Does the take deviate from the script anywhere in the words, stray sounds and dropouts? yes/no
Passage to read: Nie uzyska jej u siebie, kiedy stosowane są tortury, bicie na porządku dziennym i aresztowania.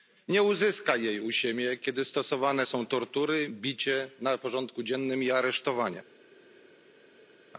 no